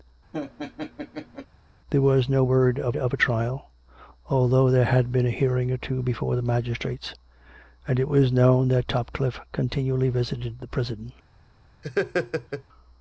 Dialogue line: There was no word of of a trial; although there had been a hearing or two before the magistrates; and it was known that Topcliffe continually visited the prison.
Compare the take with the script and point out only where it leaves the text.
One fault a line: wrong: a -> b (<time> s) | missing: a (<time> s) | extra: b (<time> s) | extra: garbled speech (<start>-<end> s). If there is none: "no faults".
no faults